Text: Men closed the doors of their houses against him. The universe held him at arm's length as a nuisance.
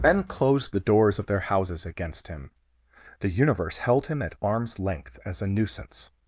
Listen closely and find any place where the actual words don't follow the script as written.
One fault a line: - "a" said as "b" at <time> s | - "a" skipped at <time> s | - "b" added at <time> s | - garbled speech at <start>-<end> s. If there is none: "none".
none